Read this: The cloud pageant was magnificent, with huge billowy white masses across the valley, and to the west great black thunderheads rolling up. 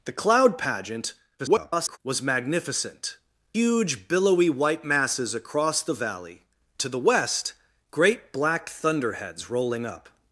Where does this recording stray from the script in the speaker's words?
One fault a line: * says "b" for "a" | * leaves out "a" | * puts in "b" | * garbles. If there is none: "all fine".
* garbles
* leaves out "with"
* leaves out "and"